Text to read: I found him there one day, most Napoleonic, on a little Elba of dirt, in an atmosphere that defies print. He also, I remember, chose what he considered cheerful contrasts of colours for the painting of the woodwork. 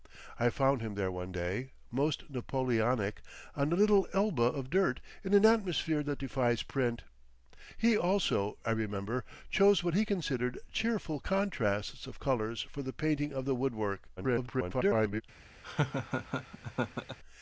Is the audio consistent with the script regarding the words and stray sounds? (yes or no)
no